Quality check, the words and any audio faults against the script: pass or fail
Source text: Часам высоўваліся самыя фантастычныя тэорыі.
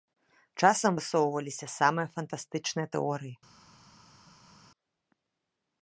pass